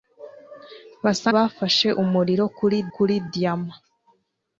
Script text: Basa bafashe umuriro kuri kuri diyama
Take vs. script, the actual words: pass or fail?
pass